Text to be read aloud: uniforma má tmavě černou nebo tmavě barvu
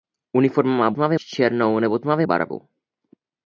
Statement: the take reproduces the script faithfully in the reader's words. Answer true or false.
true